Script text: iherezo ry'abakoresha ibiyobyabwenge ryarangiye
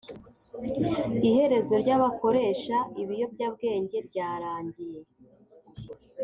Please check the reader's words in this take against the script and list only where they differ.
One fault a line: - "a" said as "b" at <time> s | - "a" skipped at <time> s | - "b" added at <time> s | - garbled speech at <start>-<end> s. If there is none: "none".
none